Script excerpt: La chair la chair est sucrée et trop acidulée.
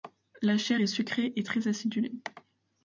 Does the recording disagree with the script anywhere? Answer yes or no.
yes